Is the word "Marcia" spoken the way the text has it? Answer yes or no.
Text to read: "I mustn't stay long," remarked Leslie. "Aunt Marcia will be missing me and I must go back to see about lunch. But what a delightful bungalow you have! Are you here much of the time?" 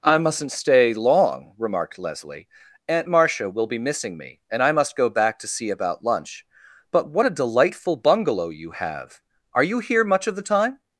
yes